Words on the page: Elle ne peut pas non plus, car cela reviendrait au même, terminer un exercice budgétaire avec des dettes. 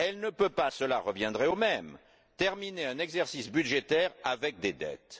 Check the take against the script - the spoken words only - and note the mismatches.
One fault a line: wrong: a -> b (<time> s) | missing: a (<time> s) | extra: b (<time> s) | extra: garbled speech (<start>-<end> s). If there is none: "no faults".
missing: non plus car (0.7 s)